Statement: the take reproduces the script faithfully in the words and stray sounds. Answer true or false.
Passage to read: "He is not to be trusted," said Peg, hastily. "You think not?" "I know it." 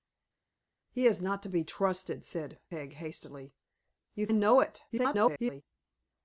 false